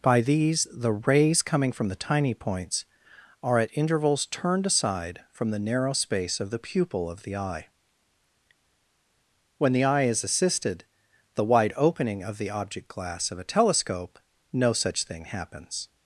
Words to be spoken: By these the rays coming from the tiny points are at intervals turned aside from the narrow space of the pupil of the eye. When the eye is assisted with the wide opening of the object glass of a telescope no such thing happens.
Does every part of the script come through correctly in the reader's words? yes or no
no